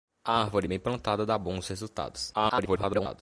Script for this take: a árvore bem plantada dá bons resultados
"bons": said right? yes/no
yes